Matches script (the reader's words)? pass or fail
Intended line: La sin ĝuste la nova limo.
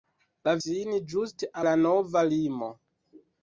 pass